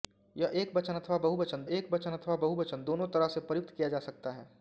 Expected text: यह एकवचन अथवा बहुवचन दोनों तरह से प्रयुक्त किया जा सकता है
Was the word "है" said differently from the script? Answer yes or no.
no